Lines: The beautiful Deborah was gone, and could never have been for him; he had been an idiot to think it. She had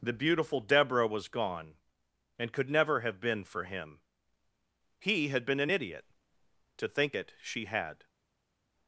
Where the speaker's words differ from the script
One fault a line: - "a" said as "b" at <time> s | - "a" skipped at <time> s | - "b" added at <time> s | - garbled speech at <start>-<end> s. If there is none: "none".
none